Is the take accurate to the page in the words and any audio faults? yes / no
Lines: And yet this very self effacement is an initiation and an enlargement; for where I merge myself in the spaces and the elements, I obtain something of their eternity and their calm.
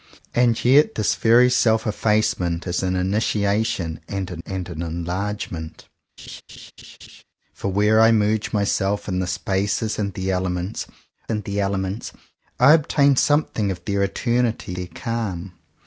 no